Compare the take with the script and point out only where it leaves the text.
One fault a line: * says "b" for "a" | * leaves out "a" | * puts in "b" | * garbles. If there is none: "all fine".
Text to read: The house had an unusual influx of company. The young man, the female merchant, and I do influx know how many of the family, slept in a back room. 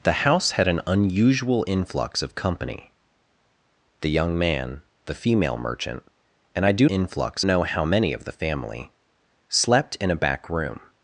all fine